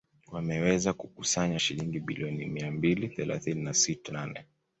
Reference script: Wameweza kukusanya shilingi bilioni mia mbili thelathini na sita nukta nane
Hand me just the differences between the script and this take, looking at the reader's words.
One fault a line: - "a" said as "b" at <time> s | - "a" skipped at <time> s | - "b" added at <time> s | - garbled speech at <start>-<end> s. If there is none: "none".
- "nukta" skipped at 4.1 s